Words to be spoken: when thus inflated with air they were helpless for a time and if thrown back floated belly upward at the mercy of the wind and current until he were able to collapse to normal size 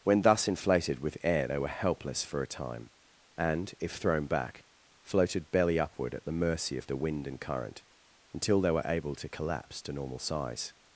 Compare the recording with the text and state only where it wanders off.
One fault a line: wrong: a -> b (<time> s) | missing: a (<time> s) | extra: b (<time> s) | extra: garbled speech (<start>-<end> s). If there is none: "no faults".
wrong: he -> they (8.6 s)